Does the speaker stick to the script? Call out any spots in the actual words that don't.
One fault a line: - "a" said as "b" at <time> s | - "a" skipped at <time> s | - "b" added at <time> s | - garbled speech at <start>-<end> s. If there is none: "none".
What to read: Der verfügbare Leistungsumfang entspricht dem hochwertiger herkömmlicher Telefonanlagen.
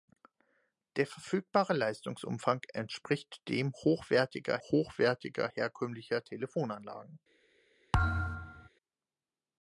- "hochwertiger" added at 4.6 s